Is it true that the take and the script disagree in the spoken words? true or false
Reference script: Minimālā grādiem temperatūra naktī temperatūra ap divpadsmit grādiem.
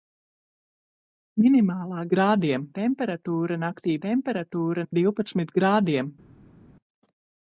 false